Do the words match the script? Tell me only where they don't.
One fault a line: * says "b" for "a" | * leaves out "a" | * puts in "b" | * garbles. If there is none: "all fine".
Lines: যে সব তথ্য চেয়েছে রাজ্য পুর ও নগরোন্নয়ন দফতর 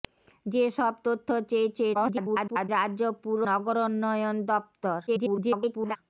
* garbles
* leaves out "ও"
* garbles